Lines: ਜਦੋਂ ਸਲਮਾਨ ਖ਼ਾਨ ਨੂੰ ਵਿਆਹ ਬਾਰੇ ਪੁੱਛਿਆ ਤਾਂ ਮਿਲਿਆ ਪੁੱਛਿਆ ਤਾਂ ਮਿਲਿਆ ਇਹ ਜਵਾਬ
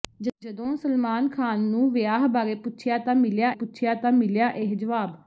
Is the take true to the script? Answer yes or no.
yes